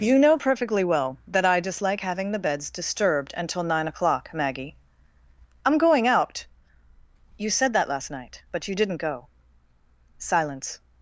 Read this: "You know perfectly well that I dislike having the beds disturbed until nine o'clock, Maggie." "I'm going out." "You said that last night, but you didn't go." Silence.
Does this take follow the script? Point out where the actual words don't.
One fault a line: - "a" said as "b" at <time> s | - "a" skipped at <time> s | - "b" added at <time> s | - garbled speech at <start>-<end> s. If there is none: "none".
none